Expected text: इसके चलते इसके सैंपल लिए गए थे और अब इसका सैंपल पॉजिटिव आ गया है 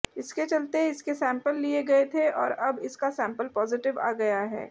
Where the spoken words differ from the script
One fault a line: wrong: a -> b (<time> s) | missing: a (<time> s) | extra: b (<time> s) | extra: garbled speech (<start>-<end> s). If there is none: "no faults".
no faults